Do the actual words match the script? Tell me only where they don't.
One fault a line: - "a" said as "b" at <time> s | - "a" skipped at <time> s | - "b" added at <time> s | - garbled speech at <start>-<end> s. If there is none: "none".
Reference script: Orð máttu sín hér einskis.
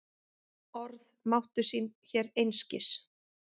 none